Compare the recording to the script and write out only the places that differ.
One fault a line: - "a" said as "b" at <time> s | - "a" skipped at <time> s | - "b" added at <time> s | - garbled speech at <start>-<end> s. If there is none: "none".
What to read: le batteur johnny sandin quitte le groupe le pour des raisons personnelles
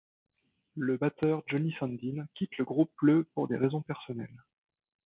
none